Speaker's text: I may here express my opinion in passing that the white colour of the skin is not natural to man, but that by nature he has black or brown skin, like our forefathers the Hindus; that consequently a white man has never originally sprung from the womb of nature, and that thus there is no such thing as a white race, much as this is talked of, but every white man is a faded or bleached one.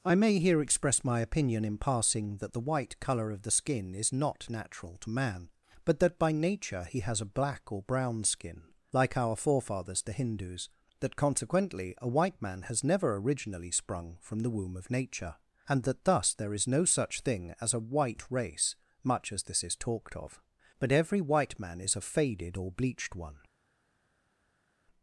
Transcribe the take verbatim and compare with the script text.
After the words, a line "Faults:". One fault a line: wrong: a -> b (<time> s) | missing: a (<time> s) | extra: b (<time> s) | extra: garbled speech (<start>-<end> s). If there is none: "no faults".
I may here express my opinion in passing that the white colour of the skin is not natural to man, but that by nature he has a black or brown skin, like our forefathers the Hindus; that consequently a white man has never originally sprung from the womb of nature, and that thus there is no such thing as a white race, much as this is talked of, but every white man is a faded or bleached one.
Faults:
extra: a (7.2 s)